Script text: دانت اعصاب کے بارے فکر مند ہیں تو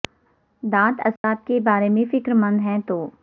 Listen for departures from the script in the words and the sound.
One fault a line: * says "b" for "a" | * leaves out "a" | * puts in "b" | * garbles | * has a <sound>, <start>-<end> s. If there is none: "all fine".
* has a dropout, 1.2-1.2 s
* puts in "میں"